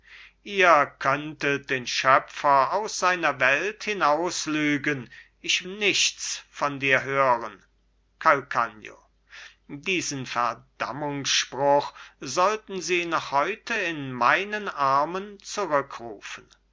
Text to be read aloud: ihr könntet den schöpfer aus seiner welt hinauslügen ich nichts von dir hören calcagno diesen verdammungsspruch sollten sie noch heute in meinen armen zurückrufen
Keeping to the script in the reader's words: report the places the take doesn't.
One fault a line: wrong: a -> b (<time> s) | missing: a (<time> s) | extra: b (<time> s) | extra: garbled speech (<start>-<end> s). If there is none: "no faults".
no faults